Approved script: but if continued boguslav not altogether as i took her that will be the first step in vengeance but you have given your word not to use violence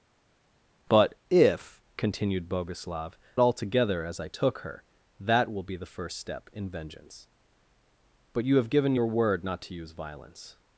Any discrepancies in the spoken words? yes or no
yes